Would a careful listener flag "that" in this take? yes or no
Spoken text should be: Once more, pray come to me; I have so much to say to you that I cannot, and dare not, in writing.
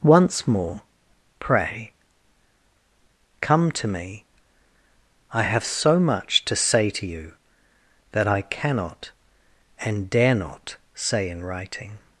no